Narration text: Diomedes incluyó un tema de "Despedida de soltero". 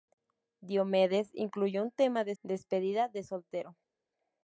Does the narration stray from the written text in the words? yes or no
no